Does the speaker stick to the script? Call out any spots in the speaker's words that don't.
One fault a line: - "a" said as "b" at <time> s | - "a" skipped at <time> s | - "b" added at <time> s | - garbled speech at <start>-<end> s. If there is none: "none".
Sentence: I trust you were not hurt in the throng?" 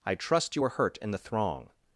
- "not" skipped at 0.7 s